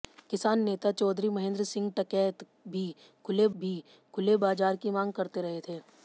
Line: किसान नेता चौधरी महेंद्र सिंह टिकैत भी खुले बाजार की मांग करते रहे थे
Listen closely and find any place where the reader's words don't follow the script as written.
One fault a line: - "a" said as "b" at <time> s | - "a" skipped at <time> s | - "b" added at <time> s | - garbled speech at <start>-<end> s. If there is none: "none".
- "भी खुले" added at 3.6 s